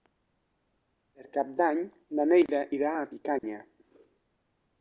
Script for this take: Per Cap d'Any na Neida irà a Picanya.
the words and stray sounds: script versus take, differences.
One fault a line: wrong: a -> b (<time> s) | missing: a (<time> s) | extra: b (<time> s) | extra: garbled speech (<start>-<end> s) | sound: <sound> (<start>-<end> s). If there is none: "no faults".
sound: dropout (3.4-3.4 s)